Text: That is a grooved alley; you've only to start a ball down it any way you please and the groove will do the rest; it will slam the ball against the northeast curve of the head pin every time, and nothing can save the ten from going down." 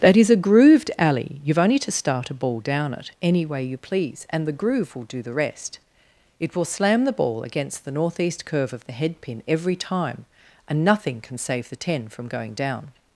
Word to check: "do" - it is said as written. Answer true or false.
true